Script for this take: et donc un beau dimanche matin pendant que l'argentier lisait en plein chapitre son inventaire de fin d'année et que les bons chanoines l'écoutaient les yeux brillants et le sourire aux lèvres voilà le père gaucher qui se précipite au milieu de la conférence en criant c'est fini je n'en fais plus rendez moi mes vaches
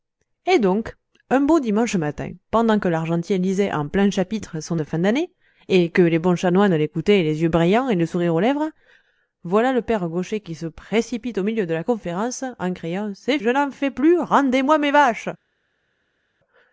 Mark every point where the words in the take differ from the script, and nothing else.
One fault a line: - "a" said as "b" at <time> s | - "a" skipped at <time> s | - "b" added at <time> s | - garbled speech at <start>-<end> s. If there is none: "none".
- "inventaire" skipped at 4.8 s
- "fini" skipped at 13.4 s